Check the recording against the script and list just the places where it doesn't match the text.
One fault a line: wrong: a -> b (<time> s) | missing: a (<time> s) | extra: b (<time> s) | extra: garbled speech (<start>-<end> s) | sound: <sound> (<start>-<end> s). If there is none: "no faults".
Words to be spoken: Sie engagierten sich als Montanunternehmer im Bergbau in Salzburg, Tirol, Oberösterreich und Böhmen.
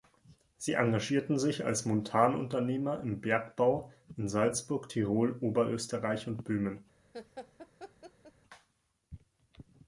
sound: laugh (7.1-8.3 s)